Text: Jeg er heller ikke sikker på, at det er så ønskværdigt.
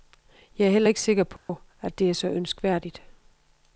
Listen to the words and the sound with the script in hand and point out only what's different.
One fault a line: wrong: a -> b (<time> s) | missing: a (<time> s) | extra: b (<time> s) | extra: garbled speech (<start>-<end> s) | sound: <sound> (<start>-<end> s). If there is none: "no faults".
sound: dropout (1.4-1.5 s)